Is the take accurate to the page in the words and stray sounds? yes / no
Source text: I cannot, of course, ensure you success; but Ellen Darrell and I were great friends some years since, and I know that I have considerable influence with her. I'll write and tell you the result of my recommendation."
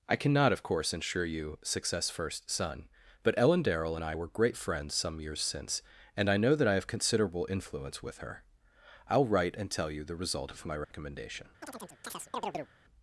no